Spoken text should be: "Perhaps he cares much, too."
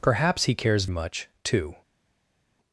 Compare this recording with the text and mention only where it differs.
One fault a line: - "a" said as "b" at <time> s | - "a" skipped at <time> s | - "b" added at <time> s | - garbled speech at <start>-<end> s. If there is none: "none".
none